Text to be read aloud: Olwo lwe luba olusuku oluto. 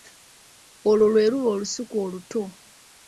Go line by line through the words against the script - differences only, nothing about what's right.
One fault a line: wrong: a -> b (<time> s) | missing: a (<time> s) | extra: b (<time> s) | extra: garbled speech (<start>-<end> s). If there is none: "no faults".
no faults